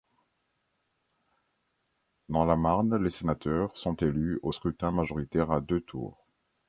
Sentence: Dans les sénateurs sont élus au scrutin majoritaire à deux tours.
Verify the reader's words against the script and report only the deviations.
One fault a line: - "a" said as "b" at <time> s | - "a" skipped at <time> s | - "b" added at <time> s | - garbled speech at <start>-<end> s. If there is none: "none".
- "la Marne" added at 2.4 s